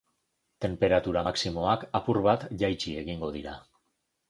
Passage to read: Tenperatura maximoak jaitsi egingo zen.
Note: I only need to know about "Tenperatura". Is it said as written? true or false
true